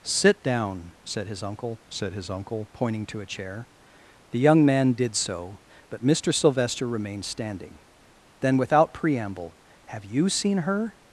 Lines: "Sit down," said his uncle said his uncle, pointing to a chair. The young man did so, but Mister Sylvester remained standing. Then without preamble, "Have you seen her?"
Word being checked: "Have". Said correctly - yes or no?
yes